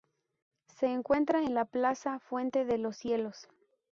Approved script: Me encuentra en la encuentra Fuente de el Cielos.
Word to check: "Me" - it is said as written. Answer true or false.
false